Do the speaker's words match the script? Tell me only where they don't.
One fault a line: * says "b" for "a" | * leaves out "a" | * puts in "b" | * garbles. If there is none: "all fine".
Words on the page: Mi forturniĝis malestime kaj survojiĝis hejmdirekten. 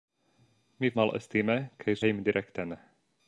* leaves out "forturniĝis"
* leaves out "survojiĝis"